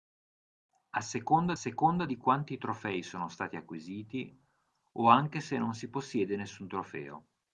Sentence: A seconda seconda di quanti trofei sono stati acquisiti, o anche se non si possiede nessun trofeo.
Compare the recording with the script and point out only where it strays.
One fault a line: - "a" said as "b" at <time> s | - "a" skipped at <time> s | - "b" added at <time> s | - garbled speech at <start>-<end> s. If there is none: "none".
none